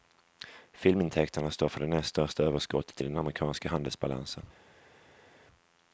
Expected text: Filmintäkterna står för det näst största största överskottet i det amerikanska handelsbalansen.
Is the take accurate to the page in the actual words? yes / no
no